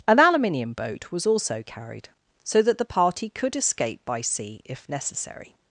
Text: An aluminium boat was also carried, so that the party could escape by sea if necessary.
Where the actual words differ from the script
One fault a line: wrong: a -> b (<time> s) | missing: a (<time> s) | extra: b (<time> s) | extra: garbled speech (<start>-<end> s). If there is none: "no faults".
no faults